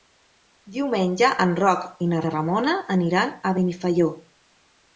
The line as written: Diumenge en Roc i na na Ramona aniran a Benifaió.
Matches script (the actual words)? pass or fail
pass